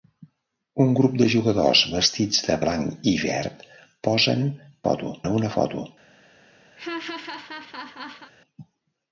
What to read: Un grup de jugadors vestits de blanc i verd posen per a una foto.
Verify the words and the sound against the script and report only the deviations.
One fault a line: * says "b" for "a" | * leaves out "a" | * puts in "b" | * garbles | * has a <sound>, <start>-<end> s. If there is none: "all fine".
* says "foto" for "per"
* has a laugh, 6.8-8.3 s